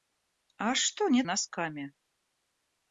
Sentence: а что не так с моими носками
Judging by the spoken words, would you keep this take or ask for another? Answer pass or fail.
fail